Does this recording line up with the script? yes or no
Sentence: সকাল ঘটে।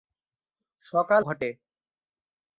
yes